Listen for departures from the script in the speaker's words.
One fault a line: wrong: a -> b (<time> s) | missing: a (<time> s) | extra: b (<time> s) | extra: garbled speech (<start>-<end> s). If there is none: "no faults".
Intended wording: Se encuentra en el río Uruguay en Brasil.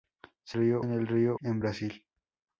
wrong: encuentra -> río (0.5 s)
missing: Uruguay (1.4 s)